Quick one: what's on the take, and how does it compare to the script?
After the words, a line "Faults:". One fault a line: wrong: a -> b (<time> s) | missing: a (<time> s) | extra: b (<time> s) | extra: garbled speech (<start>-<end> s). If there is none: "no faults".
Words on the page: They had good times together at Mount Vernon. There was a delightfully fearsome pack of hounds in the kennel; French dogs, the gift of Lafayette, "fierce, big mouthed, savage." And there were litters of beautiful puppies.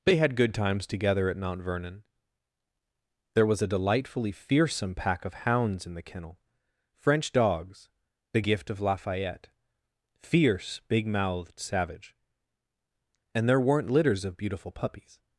They had good times together at Mount Vernon. There was a delightfully fearsome pack of hounds in the kennel; French dogs, the gift of Lafayette, "fierce, big mouthed, savage." And there weren't litters of beautiful puppies.
Faults:
wrong: were -> weren't (13.6 s)